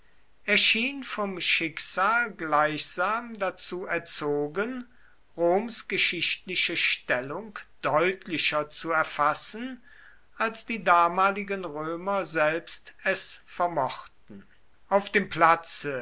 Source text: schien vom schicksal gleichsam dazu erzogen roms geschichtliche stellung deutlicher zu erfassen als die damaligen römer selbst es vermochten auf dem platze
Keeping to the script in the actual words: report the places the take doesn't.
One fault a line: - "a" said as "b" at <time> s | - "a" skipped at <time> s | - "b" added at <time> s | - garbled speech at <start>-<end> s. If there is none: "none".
none